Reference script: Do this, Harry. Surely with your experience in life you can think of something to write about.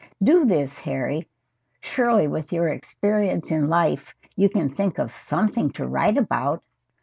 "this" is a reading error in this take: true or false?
false